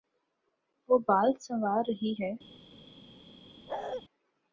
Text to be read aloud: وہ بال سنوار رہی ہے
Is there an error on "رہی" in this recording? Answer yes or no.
no